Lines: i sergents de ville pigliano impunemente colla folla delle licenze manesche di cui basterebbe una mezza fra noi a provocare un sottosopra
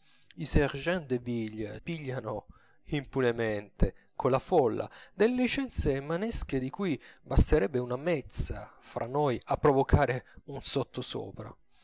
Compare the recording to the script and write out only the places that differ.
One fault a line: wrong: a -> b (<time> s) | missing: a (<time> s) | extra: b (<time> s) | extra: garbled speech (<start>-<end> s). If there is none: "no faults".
no faults